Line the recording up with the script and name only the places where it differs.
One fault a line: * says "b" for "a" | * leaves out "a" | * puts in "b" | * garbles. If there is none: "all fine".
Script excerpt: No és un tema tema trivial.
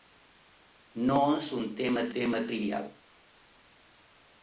all fine